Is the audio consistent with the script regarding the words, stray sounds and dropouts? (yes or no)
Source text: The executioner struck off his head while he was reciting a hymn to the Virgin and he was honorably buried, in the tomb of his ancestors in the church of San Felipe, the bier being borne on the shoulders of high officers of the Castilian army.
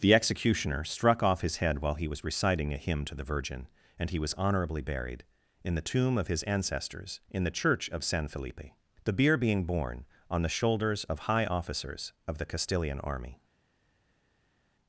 yes